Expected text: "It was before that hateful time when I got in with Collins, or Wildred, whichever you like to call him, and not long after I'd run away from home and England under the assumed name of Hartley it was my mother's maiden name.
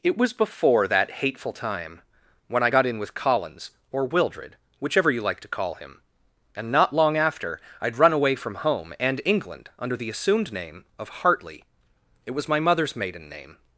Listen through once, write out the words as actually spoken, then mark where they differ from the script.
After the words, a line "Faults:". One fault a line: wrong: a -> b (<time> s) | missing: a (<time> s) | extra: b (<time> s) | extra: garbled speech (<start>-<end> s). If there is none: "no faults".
"It was before that hateful time when I got in with Collins, or Wildred, whichever you like to call him, and not long after I'd run away from home and England under the assumed name of Hartley it was my mother's maiden name.
Faults:
no faults